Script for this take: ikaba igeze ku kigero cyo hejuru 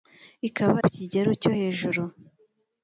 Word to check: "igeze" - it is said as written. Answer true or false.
false